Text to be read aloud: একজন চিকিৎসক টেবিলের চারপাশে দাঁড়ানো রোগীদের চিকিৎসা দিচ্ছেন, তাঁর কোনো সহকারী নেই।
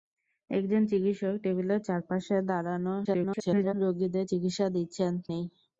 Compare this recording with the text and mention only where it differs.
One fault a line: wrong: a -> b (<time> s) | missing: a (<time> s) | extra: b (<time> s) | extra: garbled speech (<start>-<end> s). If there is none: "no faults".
extra: garbled speech (3.0-3.7 s)
missing: তাঁর কোনো সহকারী (5.1 s)